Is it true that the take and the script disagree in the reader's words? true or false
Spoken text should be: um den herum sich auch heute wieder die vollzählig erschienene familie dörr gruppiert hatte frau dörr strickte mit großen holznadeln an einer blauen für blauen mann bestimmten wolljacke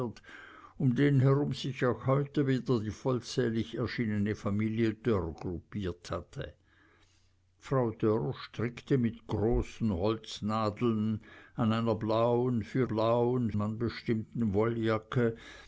false